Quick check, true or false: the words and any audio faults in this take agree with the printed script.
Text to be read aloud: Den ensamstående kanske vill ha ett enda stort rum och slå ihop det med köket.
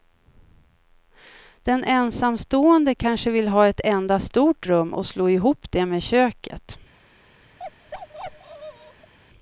false